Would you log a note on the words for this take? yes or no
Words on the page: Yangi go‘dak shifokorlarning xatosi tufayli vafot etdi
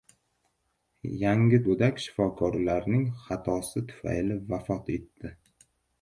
no